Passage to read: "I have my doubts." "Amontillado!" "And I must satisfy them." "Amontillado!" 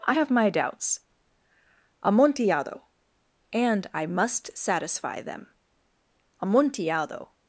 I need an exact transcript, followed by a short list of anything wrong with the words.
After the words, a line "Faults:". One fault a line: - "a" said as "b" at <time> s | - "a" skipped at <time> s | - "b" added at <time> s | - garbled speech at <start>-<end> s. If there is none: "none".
"I have my doubts." "Amontillado!" "And I must satisfy them." "Amontillado!"
Faults:
none